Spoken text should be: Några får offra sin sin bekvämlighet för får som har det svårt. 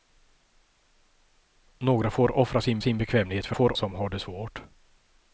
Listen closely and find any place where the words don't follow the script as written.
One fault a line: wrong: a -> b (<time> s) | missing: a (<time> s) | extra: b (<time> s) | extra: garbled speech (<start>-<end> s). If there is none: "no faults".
no faults